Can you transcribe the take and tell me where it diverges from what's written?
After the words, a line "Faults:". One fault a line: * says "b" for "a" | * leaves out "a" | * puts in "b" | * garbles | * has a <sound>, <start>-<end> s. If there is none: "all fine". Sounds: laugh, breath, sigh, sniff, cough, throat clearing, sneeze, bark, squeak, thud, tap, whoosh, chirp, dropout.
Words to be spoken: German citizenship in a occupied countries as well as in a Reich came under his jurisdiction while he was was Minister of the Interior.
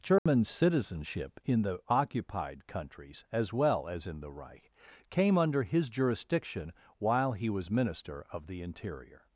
German citizenship in the occupied countries as well as in the Reich came under his jurisdiction while he was Minister of the Interior.
Faults:
* has a dropout, 0.2-0.3 s
* says "the" for "a"
* says "the" for "a"
* leaves out "was"